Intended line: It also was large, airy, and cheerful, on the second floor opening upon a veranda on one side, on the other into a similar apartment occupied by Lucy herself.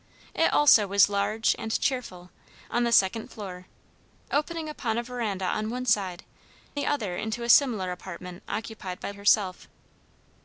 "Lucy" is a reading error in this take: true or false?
true